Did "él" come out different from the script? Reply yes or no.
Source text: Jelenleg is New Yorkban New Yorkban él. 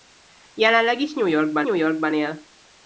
no